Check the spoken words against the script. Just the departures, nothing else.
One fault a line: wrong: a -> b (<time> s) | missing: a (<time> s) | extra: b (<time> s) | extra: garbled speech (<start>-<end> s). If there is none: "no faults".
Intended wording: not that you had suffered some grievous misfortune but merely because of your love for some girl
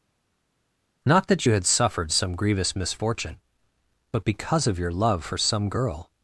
missing: merely (4.3 s)